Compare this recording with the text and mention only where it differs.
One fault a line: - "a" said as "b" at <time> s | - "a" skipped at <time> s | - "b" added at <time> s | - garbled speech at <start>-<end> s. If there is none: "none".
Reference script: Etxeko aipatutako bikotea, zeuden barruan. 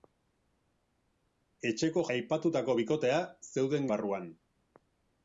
none